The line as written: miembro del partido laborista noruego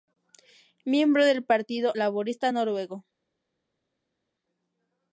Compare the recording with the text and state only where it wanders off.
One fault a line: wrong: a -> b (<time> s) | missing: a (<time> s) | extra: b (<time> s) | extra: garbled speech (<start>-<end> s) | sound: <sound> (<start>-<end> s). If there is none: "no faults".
no faults